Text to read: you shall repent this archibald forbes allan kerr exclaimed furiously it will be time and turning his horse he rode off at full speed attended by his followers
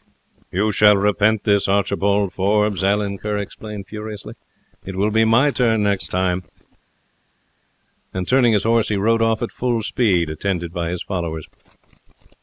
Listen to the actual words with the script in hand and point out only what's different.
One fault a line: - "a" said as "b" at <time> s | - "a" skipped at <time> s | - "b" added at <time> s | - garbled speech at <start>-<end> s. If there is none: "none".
- "my turn next" added at 5.2 s